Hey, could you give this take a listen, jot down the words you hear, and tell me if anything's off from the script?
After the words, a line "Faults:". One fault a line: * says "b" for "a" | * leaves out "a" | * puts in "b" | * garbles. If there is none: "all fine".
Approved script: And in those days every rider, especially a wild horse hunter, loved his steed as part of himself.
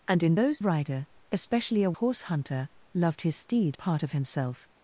And in those rider, especially a horse hunter, loved his steed part of himself.
Faults:
* leaves out "days every"
* leaves out "wild"
* leaves out "as"